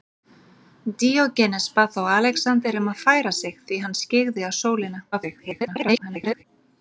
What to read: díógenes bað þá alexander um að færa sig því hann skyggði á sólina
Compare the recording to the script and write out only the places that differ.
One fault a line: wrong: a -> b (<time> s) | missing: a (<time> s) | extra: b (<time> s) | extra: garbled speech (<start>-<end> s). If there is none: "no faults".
extra: garbled speech (5.1-6.4 s)